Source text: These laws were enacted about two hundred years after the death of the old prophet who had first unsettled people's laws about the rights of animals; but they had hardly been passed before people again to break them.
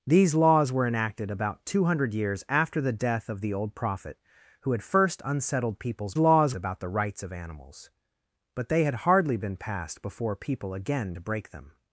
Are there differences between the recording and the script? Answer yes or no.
no